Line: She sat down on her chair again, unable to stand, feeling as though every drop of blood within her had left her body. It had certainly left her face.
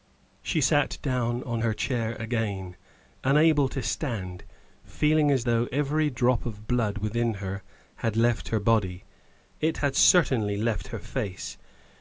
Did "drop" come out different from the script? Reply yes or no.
no